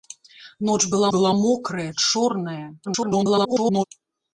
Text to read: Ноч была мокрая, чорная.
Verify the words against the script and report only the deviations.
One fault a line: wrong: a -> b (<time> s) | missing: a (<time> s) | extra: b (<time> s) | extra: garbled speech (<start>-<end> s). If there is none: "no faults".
extra: была (1.1 s)
extra: garbled speech (2.8-3.8 s)